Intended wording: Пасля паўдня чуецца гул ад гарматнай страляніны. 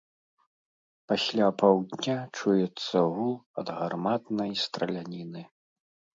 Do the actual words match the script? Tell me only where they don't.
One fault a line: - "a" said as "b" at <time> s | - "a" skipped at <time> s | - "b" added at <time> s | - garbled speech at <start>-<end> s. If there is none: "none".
none